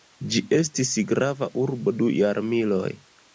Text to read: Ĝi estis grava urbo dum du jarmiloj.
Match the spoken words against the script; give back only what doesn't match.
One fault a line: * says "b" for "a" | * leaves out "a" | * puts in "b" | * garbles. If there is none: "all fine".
* leaves out "dum"